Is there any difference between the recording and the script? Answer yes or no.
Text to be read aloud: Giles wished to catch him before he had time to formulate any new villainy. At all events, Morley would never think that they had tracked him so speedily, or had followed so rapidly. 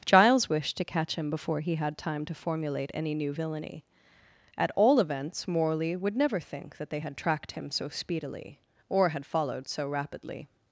no